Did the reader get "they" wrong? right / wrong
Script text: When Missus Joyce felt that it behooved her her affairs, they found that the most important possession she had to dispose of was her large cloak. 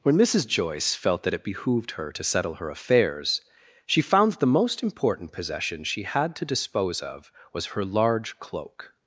wrong